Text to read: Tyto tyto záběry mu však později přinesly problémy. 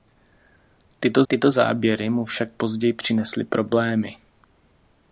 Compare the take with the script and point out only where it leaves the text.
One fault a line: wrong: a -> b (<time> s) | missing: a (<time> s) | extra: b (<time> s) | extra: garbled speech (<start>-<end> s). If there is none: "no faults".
no faults